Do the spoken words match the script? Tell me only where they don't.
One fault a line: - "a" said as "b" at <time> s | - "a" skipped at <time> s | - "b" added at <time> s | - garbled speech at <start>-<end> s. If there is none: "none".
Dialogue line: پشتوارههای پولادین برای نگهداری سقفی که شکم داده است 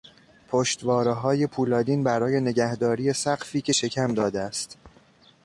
none